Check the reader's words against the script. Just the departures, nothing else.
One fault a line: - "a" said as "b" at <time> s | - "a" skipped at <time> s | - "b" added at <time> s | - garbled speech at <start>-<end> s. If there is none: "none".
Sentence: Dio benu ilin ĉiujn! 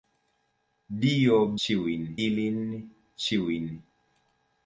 - "benu" said as "ĉiujn" at 1.7 s